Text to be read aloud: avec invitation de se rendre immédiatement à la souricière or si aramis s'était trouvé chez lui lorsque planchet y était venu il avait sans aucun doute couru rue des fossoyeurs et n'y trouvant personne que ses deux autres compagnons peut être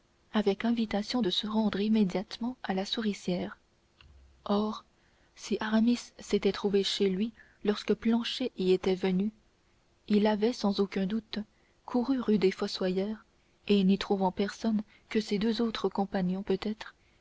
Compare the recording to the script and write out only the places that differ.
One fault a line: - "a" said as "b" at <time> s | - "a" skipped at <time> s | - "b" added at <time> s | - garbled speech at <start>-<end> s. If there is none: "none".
none